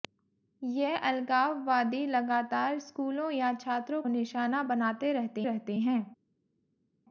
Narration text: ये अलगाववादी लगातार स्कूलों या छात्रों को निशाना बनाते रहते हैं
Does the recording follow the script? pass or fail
fail